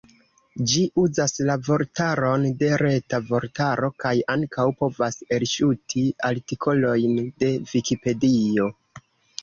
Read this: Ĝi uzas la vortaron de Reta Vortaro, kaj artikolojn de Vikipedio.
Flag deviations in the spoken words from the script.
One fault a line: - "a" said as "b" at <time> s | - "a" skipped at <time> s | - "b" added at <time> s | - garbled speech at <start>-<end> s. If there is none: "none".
- "ankaŭ povas elŝuti" added at 4.4 s